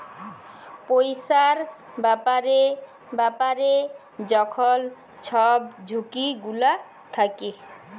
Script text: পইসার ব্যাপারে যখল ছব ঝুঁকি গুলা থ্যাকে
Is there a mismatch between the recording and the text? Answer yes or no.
yes